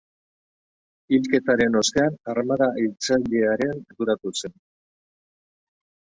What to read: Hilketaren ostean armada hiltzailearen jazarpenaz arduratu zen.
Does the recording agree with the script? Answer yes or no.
no